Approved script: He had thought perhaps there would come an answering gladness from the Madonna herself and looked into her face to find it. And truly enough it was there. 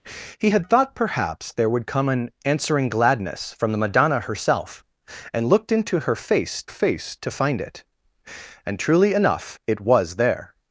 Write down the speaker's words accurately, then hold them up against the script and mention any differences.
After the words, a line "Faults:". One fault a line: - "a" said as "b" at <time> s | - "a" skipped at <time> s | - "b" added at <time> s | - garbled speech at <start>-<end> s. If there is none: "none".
He had thought perhaps there would come an answering gladness from the Madonna herself and looked into her face face to find it. And truly enough it was there.
Faults:
- "face" added at 6.7 s